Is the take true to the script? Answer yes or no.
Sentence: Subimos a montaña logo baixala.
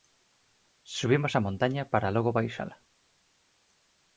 no